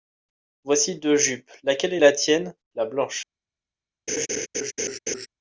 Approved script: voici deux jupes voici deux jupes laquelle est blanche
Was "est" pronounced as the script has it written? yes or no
no